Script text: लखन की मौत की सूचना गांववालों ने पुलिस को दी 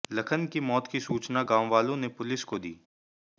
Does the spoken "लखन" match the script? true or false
true